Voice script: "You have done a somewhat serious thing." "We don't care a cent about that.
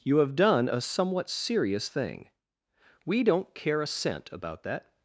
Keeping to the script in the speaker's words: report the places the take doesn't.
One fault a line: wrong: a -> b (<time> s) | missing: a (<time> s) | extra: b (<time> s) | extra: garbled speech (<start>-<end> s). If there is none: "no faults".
no faults